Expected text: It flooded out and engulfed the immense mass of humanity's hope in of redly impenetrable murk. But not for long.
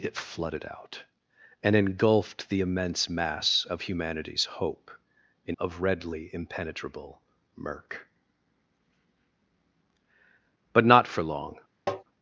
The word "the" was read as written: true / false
true